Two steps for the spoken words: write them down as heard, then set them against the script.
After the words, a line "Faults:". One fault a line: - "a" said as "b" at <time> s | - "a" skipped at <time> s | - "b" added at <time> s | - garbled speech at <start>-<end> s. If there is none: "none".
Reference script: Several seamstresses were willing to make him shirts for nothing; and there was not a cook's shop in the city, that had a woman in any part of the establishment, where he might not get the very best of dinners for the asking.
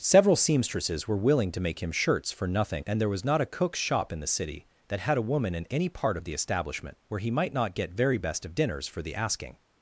Several seamstresses were willing to make him shirts for nothing; and there was not a cook's shop in the city, that had a woman in any part of the establishment, where he might not get very best of dinners for the asking.
Faults:
- "the" skipped at 7.9 s